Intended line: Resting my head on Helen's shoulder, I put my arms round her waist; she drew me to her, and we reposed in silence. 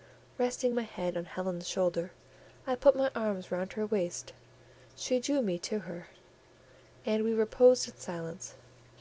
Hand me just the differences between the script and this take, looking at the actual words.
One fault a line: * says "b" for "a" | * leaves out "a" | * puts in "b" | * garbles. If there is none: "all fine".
all fine